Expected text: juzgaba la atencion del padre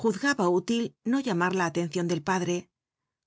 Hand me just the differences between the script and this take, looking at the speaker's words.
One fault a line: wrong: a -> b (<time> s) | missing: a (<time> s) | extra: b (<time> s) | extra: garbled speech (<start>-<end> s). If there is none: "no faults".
extra: útil no llamar (0.5 s)